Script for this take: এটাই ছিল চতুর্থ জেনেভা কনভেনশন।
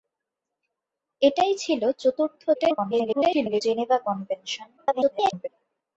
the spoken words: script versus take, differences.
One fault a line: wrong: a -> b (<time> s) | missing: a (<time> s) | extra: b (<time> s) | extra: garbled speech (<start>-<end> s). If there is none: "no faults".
extra: garbled speech (2.5-3.6 s)
extra: garbled speech (4.8-5.5 s)